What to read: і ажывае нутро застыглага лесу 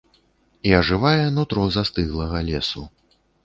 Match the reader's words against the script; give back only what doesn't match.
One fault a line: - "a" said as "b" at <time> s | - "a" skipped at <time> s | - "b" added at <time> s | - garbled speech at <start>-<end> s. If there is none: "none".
none